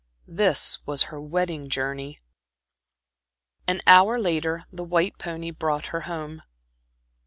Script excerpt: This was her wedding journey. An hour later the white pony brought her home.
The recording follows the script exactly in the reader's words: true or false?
true